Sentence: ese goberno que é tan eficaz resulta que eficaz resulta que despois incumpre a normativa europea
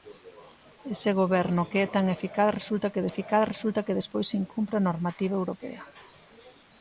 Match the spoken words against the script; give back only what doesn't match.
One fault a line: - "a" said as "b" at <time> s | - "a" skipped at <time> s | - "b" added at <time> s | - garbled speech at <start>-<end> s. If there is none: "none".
none